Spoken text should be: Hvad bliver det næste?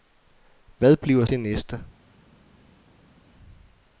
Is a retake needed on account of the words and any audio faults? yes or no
no